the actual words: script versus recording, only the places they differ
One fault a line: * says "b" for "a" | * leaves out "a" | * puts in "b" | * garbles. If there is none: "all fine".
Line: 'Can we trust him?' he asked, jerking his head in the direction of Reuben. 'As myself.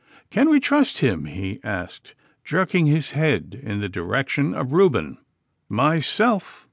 * leaves out "As"